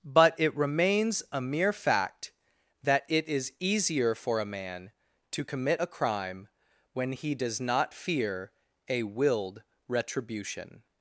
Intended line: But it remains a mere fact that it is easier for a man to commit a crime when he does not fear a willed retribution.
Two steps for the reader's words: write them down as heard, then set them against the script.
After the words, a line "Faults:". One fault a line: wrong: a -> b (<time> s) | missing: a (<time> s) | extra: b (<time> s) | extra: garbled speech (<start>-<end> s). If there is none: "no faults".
But it remains a mere fact that it is easier for a man to commit a crime when he does not fear a willed retribution.
Faults:
no faults